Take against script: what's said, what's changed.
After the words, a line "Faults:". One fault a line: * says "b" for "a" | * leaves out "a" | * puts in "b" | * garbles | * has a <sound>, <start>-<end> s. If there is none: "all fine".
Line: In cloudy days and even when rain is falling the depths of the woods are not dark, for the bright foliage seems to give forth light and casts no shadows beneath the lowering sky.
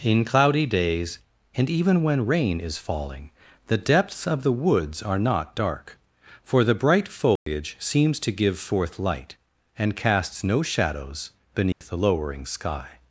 In cloudy days and even when rain is falling the depths of the woods are not dark, for the bright foliage seems to give forth light and casts no shadows beneath the lowering sky.
Faults:
* has a dropout, 7.4-7.5 s
* has a dropout, 11.7-11.8 s